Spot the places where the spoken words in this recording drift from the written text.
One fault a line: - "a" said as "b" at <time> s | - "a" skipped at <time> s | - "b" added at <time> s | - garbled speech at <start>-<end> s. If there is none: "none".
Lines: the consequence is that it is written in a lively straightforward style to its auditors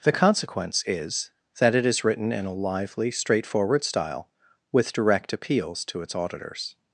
- "with direct appeals" added at 4.7 s